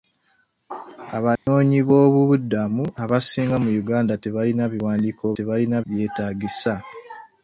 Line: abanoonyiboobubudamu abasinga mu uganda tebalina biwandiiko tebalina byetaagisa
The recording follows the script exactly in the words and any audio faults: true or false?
false